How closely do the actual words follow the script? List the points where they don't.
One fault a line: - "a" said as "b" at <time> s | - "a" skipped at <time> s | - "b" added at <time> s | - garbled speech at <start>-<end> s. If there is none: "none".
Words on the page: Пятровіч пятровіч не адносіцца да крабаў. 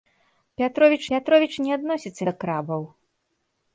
none